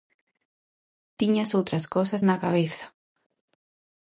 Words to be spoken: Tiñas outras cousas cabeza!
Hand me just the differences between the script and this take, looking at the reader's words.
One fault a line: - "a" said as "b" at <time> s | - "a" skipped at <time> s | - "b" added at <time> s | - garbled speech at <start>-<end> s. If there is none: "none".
- "na" added at 2.3 s